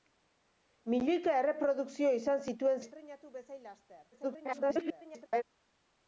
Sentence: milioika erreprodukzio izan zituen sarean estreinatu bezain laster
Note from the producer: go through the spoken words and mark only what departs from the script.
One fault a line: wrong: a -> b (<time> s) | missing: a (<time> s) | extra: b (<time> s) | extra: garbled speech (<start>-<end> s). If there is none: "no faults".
missing: sarean (2.8 s)
extra: garbled speech (4.1-5.4 s)